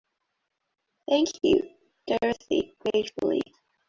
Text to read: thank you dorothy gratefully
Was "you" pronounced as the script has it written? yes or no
yes